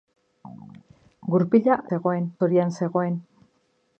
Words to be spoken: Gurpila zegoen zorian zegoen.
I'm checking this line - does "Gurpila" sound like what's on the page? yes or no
yes